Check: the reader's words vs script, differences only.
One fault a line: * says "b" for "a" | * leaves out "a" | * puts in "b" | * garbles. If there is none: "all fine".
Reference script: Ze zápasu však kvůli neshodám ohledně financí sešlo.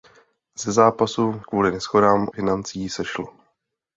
* leaves out "však"
* leaves out "ohledně"